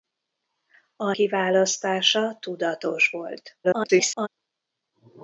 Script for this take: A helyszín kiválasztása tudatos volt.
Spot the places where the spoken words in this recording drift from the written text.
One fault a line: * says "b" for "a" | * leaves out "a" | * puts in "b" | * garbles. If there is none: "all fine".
* leaves out "helyszín"
* garbles